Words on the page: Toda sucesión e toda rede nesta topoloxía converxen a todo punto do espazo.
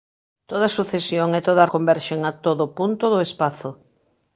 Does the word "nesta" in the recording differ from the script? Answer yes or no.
yes